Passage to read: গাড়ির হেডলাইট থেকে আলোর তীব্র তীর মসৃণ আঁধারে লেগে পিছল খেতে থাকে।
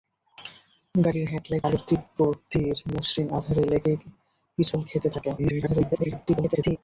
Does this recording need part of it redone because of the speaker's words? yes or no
yes